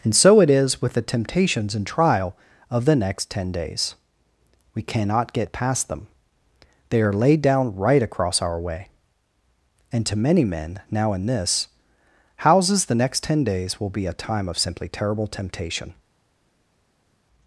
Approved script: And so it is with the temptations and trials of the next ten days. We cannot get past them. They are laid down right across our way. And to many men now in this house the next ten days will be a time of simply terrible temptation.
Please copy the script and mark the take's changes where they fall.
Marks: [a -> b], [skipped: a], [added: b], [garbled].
And so it is with the temptations and [trials -> trial] of the next ten days. We cannot get past them. They are laid down right across our way. And to many men now in this [house -> houses] the next ten days will be a time of simply terrible temptation.